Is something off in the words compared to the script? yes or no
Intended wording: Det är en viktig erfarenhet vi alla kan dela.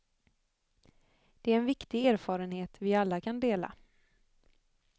no